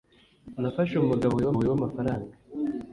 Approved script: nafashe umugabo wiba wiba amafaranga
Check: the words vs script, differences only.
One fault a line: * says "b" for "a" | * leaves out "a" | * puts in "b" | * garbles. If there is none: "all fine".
all fine